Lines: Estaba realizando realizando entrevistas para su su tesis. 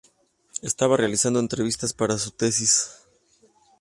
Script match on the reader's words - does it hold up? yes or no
no